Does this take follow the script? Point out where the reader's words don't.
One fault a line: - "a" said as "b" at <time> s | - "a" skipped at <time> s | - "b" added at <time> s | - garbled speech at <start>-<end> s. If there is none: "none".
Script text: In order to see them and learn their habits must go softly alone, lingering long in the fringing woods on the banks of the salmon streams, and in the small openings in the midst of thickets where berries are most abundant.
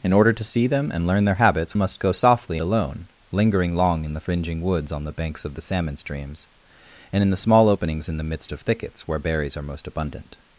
none